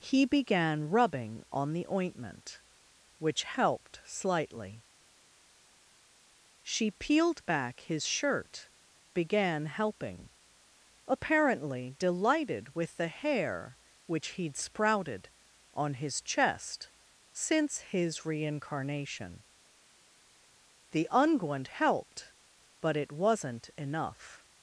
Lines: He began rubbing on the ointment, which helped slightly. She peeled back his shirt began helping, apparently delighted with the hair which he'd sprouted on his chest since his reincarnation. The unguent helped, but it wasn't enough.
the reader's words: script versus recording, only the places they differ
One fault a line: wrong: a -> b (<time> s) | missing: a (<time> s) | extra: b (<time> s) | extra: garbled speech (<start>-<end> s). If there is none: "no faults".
no faults